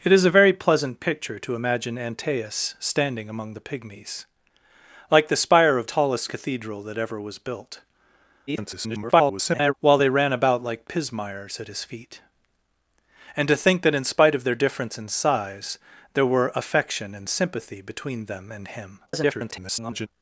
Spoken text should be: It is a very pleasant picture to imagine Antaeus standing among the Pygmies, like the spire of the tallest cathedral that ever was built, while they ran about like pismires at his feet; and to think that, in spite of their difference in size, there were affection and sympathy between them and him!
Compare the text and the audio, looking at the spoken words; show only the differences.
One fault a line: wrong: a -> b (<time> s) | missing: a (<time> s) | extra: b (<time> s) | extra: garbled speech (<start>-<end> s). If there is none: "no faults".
missing: the (5.8 s)
extra: garbled speech (8.5-9.7 s)
extra: garbled speech (19.1-20.1 s)